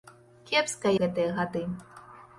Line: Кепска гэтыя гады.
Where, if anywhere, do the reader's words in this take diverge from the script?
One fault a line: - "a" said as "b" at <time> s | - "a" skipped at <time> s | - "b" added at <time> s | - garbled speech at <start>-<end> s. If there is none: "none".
none